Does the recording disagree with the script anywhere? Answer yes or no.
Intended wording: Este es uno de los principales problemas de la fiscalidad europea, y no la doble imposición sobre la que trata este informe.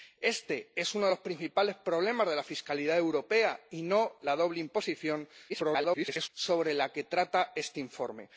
yes